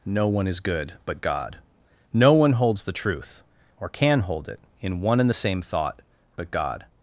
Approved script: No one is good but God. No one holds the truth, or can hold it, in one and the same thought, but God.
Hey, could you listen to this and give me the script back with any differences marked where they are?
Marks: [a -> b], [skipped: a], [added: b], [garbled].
No one is good but God. No one holds the truth, or can hold it, in one and the same thought, but God.